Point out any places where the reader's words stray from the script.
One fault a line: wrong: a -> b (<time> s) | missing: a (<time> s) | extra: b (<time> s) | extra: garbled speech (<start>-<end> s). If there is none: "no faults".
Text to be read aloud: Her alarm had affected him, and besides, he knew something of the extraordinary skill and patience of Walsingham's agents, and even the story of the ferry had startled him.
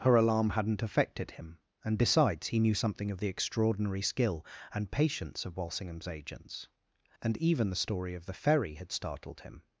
wrong: had -> hadn't (0.5 s)